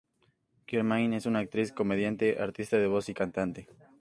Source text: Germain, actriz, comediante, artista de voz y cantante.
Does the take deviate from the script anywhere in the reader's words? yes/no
yes